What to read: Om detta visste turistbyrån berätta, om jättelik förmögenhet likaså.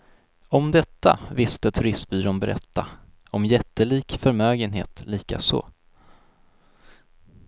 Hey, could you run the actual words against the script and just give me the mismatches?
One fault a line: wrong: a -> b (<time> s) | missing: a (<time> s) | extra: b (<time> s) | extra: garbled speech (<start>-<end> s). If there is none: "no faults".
no faults